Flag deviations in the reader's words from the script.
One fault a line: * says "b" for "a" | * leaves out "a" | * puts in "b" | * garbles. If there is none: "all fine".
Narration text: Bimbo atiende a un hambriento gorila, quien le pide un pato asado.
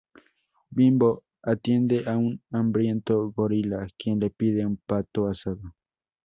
all fine